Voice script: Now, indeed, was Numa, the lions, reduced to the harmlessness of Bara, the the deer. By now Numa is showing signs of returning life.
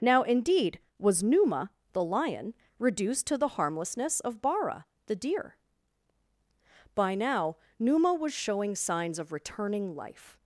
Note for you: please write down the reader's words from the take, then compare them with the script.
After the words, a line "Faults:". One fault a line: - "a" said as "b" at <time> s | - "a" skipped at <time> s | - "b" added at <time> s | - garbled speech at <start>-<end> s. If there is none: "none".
Now, indeed, was Numa, the lion, reduced to the harmlessness of Bara, the deer. By now Numa was showing signs of returning life.
Faults:
- "lions" said as "lion" at 2.0 s
- "the" skipped at 5.2 s
- "is" said as "was" at 8.1 s